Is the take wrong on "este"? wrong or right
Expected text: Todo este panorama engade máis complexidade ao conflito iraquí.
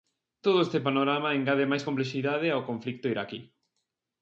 right